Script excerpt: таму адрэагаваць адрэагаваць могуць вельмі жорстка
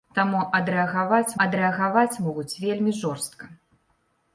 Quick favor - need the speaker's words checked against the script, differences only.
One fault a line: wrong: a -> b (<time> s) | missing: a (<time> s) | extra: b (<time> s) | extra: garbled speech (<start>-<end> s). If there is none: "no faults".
no faults